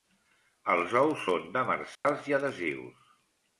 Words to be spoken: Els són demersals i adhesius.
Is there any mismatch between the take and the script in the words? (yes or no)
yes